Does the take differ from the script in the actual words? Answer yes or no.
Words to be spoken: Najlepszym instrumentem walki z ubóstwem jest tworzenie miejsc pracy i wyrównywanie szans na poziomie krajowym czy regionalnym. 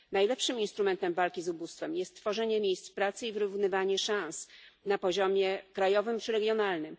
no